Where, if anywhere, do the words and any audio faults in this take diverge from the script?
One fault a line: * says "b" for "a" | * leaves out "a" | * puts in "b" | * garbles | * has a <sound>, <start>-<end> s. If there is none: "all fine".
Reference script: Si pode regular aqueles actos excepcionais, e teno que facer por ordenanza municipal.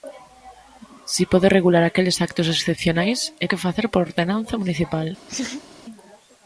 * leaves out "teno"
* has a laugh, 5.3-5.7 s